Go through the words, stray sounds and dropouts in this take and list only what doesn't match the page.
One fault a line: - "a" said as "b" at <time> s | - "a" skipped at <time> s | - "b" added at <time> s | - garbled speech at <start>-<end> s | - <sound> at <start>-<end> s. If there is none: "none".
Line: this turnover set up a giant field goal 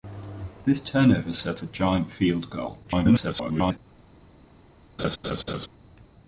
- "up" skipped at 1.6 s
- garbled speech at 2.8-3.8 s
- laugh at 5.0-5.7 s